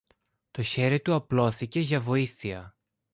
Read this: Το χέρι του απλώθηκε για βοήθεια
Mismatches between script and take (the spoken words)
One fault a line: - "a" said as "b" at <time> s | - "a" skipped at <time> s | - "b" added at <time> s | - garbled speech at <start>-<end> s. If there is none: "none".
none